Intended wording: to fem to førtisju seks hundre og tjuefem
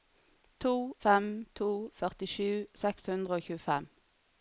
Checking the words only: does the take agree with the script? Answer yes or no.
yes